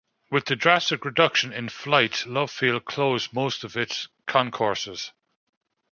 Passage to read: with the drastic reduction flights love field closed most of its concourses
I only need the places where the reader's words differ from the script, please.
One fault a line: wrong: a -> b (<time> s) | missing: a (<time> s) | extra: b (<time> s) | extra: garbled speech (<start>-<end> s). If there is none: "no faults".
extra: in (1.5 s)